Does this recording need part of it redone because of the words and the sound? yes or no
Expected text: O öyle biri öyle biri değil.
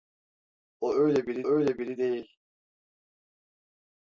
no